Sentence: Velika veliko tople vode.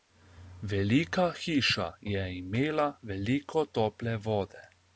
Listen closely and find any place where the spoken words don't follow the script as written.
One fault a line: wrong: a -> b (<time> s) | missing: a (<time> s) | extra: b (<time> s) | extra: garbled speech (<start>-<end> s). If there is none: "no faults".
extra: hiša je imela (1.4 s)